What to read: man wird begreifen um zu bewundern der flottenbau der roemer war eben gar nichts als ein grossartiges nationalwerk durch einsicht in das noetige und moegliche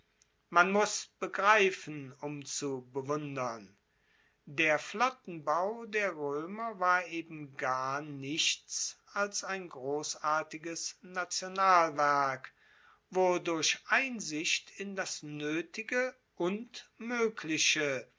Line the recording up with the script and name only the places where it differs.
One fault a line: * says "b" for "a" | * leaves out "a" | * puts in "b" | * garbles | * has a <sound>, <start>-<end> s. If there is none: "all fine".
* says "muss" for "wird"
* puts in "wo"